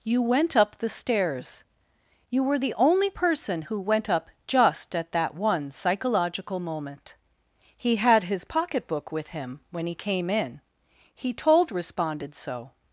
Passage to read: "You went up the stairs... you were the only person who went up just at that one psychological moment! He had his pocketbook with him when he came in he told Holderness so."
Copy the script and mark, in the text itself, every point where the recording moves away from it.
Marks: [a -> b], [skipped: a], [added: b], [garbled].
"You went up the stairs... you were the only person who went up just at that one psychological moment! He had his pocketbook with him when he came in he told [Holderness -> Responded] so."